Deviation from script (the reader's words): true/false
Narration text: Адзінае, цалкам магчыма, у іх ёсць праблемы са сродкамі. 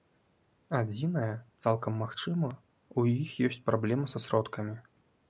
false